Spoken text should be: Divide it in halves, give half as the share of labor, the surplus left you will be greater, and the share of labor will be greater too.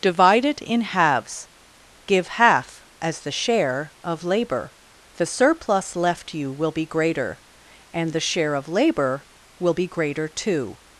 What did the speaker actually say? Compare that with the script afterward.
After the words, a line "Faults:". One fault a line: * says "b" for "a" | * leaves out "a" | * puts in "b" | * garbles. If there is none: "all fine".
Divide it in halves, give half as the share of labor, the surplus left you will be greater, and the share of labor will be greater too.
Faults:
all fine